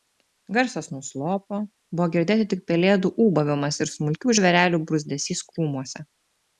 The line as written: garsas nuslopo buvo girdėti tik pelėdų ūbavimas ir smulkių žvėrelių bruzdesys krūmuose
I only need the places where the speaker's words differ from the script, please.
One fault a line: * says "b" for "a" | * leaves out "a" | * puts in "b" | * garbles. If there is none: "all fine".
all fine